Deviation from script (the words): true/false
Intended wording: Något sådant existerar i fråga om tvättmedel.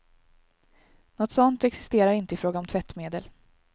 true